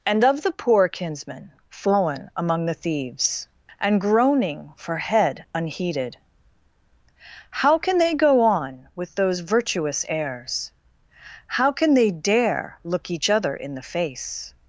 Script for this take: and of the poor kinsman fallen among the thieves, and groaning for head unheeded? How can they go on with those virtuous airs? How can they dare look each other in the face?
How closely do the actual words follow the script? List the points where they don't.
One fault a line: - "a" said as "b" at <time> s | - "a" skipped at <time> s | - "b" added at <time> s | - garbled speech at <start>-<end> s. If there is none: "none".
none